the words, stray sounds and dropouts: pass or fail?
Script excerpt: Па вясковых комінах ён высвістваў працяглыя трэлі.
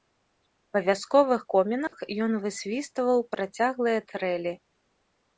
fail